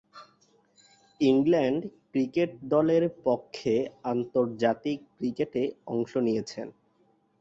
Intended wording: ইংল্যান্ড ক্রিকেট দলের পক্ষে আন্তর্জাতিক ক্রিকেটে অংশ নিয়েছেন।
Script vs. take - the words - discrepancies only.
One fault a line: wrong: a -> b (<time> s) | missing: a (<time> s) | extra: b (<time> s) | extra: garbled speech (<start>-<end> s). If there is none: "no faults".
no faults